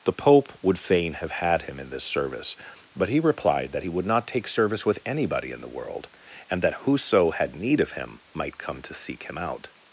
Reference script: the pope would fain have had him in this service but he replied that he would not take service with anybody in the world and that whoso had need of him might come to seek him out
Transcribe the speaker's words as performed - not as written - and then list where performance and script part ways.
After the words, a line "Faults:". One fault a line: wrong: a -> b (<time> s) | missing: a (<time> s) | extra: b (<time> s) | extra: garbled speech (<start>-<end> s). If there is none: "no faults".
the pope would fain have had him in this service but he replied that he would not take service with anybody in the world and that whoso had need of him might come to seek him out
Faults:
no faults